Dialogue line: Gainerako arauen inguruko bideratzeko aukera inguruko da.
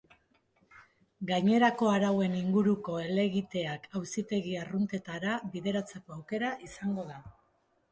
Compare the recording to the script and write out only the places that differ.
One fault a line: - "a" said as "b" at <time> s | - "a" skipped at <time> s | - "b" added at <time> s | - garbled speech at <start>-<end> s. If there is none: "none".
- "helegiteak auzitegi arruntetara" added at 3.0 s
- "inguruko" said as "izango" at 6.7 s